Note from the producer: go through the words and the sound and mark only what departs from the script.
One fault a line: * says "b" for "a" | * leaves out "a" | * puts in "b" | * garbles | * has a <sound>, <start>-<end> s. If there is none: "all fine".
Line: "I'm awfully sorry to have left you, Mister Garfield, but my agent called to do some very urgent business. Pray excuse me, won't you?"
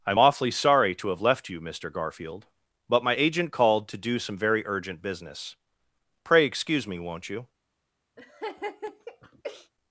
* has a laugh, 8.2-9.7 s